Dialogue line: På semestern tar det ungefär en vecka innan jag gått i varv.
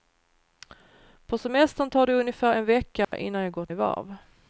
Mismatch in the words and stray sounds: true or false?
true